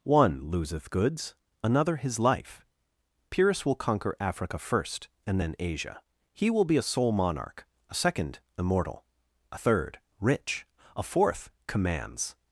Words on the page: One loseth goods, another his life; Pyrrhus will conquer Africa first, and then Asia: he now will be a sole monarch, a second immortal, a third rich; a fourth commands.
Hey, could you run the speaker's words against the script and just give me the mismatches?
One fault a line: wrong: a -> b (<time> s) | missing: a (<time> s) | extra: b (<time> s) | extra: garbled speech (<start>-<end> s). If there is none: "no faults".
missing: now (6.5 s)